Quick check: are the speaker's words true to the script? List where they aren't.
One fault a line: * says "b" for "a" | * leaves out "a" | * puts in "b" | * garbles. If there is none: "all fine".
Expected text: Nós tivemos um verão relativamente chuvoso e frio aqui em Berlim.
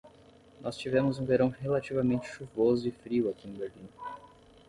all fine